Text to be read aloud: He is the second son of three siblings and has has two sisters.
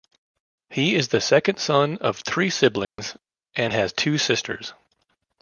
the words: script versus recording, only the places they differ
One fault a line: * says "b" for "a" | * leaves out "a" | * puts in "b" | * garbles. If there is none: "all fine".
* leaves out "has"